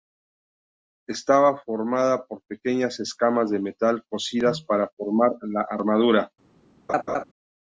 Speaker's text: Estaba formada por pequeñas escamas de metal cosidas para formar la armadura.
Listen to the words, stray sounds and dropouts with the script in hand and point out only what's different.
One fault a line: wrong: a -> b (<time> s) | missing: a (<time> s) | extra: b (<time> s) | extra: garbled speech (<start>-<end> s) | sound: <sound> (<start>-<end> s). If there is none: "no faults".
sound: laugh (6.9-7.2 s)